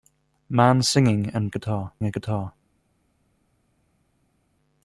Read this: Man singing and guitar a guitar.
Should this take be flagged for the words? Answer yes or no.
no